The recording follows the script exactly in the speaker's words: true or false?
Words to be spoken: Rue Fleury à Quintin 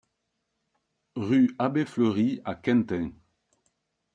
false